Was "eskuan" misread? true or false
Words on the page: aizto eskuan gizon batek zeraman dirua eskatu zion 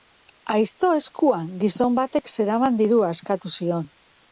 false